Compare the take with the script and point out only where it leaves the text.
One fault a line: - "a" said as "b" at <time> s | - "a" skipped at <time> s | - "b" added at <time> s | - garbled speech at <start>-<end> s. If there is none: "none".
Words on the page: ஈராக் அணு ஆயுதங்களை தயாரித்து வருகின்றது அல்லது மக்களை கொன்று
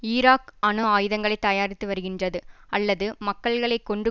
none